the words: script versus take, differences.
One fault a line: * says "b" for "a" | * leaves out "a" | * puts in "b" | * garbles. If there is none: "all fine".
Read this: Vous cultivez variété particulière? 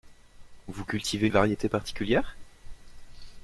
all fine